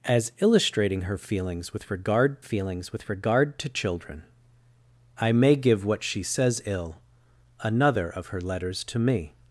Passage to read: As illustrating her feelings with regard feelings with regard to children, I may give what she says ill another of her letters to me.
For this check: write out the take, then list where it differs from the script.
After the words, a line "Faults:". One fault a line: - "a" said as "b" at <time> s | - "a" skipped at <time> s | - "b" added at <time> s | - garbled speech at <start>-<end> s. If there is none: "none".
As illustrating her feelings with regard feelings with regard to children, I may give what she says ill another of her letters to me.
Faults:
none